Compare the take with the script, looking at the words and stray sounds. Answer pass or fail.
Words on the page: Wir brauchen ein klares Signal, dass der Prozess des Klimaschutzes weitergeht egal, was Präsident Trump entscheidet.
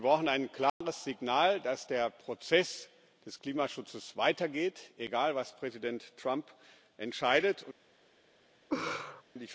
fail